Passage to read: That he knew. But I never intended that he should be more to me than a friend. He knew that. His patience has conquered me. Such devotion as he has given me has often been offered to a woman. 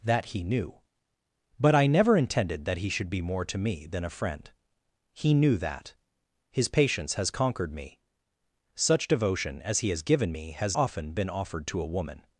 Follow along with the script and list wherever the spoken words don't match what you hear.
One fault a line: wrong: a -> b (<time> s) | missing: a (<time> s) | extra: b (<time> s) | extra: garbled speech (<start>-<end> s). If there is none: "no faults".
no faults